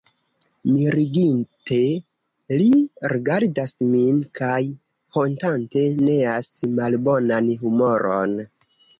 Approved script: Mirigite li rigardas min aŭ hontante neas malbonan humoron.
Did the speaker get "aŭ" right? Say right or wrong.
wrong